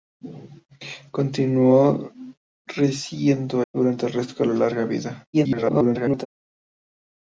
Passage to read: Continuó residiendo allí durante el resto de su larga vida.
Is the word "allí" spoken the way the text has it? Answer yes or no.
no